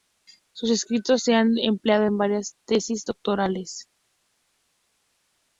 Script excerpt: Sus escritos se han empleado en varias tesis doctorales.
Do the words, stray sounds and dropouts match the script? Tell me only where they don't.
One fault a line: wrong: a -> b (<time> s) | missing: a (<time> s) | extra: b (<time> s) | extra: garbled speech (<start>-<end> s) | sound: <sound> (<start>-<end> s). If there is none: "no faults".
no faults